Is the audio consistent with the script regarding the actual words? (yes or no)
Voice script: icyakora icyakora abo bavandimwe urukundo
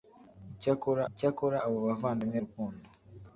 yes